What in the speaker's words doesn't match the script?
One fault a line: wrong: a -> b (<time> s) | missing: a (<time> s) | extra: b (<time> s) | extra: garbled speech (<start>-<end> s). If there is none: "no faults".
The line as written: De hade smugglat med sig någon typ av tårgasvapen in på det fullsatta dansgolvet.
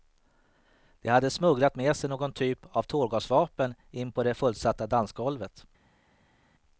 no faults